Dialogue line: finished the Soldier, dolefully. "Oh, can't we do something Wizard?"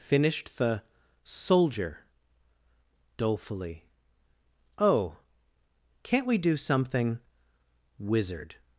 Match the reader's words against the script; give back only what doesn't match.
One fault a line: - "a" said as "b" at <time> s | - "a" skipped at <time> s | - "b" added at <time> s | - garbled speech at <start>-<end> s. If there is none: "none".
none